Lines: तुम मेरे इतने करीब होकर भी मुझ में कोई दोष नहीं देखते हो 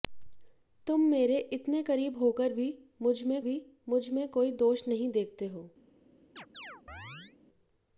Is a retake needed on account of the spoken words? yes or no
yes